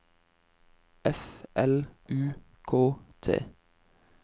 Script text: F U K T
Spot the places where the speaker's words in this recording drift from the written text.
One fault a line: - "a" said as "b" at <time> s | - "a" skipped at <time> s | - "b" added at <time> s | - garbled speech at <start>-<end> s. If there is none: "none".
- "L" added at 1.5 s